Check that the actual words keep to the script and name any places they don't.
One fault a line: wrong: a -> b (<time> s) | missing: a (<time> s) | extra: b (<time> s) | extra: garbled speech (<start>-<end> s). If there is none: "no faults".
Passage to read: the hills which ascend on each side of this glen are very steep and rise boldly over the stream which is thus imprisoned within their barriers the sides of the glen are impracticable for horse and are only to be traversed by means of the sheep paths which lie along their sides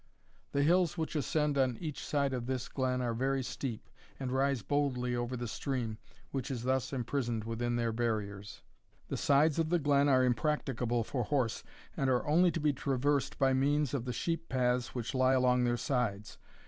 no faults